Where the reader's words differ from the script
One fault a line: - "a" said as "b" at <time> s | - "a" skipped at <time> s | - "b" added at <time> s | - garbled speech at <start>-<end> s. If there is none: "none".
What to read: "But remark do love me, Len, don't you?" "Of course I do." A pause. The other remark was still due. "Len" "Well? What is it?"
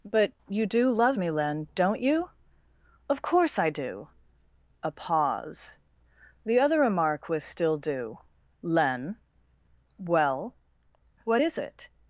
- "remark" said as "you" at 0.5 s